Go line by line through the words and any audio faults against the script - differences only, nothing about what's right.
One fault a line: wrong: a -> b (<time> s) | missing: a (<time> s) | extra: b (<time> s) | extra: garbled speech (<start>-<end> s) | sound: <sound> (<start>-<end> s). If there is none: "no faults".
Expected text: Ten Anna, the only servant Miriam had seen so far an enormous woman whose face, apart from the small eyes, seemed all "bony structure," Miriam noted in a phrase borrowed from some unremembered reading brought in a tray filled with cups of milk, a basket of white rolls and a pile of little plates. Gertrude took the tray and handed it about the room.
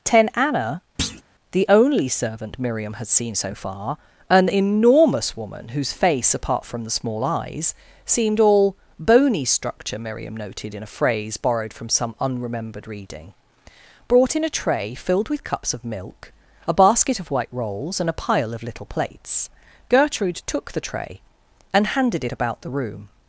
sound: thud (1.0-1.2 s)